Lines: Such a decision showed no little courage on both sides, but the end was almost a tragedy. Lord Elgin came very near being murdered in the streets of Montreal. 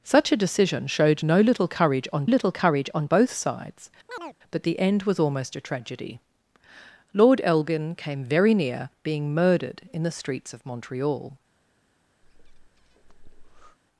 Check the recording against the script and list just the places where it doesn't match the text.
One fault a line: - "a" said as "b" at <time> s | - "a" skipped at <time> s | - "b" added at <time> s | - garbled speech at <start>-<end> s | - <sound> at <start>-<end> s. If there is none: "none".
- "little courage on" added at 2.3 s
- chirp at 4.1-4.4 s
- breath at 12.2-13.8 s